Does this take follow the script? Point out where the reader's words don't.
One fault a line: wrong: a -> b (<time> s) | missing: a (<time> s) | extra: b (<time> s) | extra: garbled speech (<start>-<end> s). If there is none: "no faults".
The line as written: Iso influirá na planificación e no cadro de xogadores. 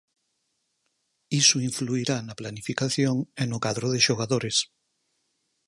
no faults